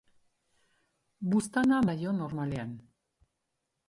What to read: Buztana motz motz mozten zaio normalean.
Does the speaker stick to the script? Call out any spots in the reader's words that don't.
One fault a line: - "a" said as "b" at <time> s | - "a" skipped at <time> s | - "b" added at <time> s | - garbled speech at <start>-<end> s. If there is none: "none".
- "motz motz mozten" skipped at 1.8 s